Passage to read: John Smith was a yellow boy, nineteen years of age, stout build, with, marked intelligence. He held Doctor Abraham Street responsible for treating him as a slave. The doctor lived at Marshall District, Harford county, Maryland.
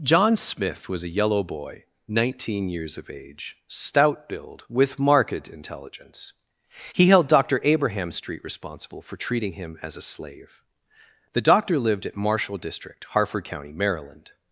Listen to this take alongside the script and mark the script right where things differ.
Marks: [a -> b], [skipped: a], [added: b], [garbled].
John Smith was a yellow boy, nineteen years of age, stout build, with, marked intelligence. He held Doctor Abraham Street responsible for treating him as a slave. The doctor lived at Marshall District, Harford county, Maryland.